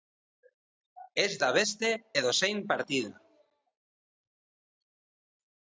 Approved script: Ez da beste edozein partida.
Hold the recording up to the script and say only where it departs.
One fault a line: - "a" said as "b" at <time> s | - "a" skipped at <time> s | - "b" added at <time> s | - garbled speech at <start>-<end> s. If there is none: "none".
none